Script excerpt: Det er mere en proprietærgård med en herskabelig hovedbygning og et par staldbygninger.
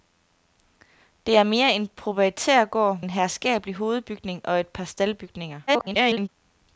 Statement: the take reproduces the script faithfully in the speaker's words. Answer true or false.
false